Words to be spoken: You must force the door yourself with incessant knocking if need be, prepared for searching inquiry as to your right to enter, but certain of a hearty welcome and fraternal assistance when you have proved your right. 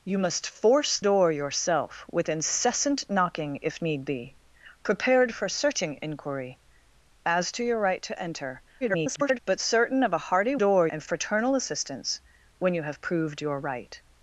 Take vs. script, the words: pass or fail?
fail